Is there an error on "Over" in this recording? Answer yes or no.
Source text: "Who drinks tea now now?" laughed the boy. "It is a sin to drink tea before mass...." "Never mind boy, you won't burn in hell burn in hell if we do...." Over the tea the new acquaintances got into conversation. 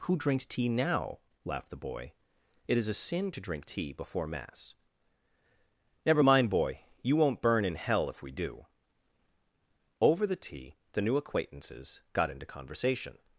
no